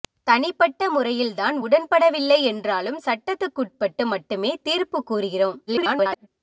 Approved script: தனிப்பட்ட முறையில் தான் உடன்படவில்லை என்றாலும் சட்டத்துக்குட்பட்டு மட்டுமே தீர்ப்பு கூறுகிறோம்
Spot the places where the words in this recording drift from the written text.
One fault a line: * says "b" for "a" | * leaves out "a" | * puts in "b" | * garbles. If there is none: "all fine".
* garbles